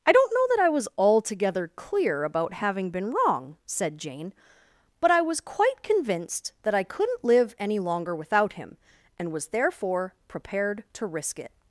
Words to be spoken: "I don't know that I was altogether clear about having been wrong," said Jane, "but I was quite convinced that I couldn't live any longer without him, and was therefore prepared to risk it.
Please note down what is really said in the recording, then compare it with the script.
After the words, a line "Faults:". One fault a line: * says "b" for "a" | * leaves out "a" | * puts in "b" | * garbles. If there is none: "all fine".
"I don't know that I was altogether clear about having been wrong," said Jane, "but I was quite convinced that I couldn't live any longer without him, and was therefore prepared to risk it.
Faults:
all fine